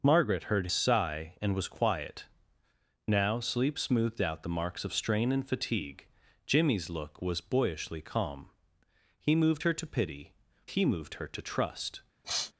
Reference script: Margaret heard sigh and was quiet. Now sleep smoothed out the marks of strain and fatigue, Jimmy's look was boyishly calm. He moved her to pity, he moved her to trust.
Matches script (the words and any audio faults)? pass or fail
fail